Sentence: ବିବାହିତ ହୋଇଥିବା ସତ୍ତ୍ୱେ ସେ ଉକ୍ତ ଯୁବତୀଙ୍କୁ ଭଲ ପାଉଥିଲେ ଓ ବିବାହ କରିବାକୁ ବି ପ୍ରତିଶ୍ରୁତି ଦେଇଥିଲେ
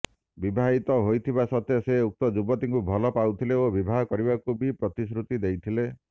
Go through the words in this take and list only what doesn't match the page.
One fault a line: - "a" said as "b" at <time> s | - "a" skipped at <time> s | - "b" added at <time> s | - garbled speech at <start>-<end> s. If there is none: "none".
none